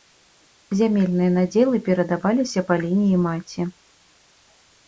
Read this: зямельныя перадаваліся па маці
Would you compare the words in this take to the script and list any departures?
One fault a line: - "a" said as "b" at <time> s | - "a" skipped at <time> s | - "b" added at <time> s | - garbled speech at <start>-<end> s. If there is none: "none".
- "надзелы" added at 1.4 s
- "лініі" added at 2.9 s